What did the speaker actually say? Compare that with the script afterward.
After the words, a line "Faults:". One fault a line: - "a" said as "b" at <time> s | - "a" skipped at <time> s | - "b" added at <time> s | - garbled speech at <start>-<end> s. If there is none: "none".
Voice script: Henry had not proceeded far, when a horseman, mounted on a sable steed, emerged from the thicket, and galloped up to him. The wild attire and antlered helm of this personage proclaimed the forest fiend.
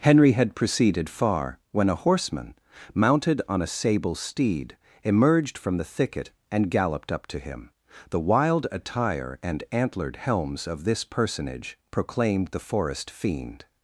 Henry had proceeded far, when a horseman, mounted on a sable steed, emerged from the thicket, and galloped up to him. The wild attire and antlered helms of this personage proclaimed the forest fiend.
Faults:
- "not" skipped at 0.6 s
- "helm" said as "helms" at 10.2 s